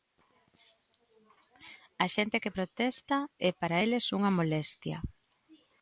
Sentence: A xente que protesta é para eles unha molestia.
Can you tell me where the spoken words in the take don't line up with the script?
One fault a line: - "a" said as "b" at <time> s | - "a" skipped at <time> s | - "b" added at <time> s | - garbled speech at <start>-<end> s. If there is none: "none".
none